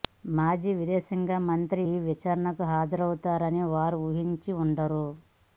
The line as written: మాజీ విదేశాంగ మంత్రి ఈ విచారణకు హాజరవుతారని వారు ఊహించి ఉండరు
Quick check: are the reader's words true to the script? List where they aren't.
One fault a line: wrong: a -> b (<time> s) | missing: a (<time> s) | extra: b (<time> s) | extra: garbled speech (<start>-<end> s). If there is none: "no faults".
no faults